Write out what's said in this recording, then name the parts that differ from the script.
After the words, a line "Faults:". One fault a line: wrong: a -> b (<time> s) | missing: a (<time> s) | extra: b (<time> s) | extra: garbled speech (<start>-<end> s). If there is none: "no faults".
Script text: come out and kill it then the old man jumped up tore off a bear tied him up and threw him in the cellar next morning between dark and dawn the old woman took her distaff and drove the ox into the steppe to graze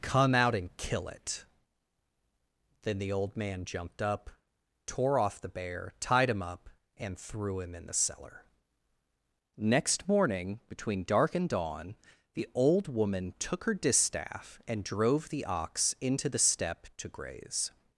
come out and kill it then the old man jumped up tore off the bear tied him up and threw him in the cellar next morning between dark and dawn the old woman took her distaff and drove the ox into the steppe to graze
Faults:
wrong: a -> the (5.4 s)